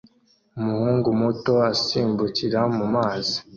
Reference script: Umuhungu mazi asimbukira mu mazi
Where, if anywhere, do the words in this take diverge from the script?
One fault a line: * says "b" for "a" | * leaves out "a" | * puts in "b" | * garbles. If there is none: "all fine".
* says "muto" for "mazi"